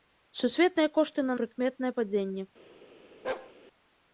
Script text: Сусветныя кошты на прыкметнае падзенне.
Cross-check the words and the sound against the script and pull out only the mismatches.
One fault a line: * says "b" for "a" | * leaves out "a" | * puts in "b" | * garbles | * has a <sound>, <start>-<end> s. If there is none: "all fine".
* has a bark, 3.2-3.5 s